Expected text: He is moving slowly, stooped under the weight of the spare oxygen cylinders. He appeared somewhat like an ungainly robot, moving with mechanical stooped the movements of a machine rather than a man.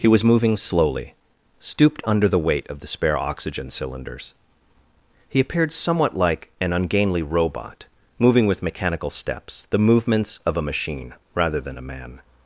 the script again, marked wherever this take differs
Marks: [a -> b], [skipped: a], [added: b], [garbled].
He [is -> was] moving slowly, stooped under the weight of the spare oxygen cylinders. He appeared somewhat like an ungainly robot, moving with mechanical [stooped -> steps] the movements of a machine rather than a man.